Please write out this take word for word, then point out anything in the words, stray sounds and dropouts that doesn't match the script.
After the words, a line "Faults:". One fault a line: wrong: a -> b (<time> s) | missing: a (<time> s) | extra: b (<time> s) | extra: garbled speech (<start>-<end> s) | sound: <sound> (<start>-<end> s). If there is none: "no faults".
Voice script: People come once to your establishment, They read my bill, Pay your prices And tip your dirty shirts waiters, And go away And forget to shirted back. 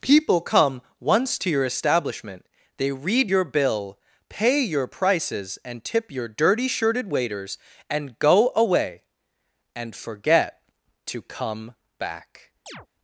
People come once to your establishment, They read your bill, Pay your prices And tip your dirty shirted waiters, And go away And forget to come back.
Faults:
wrong: my -> your (3.3 s)
wrong: shirts -> shirted (6.7 s)
wrong: shirted -> come (11.2 s)
sound: chirp (12.7-12.9 s)